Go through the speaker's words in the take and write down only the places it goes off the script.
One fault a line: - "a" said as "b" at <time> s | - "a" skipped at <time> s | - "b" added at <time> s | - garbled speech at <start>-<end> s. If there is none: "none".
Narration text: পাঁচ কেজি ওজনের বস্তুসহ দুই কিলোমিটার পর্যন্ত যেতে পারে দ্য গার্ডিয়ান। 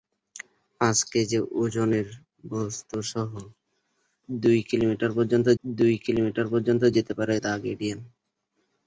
- "দুই কিলোমিটার পর্যন্ত" added at 5.6 s